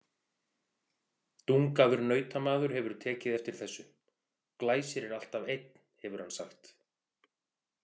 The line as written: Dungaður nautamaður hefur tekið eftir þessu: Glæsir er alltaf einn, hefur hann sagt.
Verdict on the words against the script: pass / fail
pass